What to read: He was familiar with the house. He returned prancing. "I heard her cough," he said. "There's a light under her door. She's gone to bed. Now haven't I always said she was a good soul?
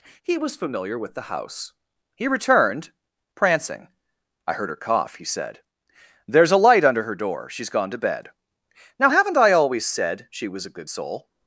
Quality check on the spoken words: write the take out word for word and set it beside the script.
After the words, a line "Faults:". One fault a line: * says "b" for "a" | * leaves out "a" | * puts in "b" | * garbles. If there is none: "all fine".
He was familiar with the house. He returned prancing. "I heard her cough," he said. "There's a light under her door. She's gone to bed. Now haven't I always said she was a good soul?
Faults:
all fine